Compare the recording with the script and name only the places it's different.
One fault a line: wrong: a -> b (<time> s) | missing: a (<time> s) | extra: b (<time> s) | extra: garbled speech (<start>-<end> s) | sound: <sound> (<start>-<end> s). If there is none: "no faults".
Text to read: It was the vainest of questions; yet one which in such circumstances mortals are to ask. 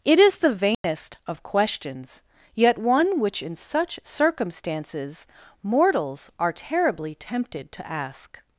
wrong: was -> is (0.2 s)
sound: dropout (0.7-0.8 s)
extra: terribly tempted (6.5 s)